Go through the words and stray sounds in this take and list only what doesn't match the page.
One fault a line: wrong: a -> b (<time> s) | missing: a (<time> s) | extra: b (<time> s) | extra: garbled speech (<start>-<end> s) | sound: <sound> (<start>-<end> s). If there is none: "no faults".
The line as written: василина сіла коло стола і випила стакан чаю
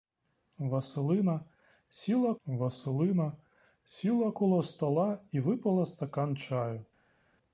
extra: василина сіла (2.4 s)